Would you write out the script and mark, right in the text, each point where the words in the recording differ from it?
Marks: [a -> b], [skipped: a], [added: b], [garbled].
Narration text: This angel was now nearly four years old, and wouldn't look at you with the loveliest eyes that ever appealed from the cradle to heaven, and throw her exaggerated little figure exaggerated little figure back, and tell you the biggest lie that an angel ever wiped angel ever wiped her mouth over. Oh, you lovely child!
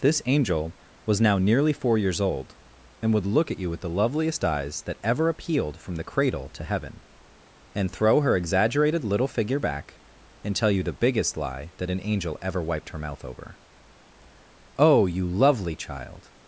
This angel was now nearly four years old, and [wouldn't -> would] look at you with the loveliest eyes that ever appealed from the cradle to heaven, and throw her exaggerated little figure [skipped: exaggerated little figure] back, and tell you the biggest lie that an angel ever wiped [skipped: angel ever wiped] her mouth over. Oh, you lovely child!